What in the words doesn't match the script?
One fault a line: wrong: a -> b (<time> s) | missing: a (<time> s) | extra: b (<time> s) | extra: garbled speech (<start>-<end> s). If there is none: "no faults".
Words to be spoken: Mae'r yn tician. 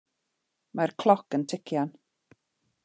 extra: cloc (1.0 s)